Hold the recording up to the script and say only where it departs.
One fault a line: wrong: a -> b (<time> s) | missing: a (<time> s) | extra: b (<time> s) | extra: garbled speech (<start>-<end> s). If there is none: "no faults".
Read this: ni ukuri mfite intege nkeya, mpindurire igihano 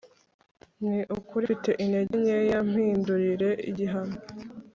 no faults